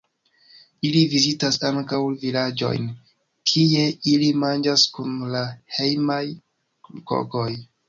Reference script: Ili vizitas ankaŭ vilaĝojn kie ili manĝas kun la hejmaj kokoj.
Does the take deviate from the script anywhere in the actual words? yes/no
no